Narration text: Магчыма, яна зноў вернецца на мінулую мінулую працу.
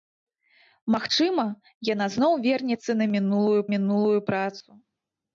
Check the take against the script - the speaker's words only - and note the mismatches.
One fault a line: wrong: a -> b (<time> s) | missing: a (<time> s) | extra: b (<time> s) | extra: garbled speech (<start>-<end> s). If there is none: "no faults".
no faults